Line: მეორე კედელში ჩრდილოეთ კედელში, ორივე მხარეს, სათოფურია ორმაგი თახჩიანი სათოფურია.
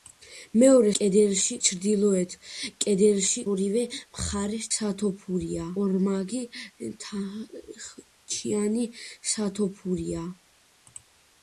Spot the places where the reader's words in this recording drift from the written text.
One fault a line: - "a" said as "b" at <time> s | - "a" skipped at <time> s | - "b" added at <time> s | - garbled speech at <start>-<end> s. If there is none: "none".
none